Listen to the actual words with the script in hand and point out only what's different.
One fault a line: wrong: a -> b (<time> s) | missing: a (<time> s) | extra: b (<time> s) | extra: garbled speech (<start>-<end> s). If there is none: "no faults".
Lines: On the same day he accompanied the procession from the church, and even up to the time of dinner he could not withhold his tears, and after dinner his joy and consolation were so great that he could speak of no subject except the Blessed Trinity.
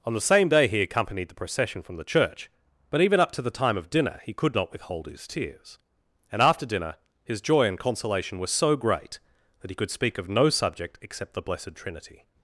wrong: and -> but (2.9 s)